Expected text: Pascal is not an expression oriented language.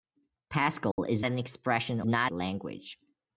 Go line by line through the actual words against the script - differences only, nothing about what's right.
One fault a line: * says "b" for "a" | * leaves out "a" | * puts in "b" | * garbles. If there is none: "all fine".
* leaves out "not"
* says "not" for "oriented"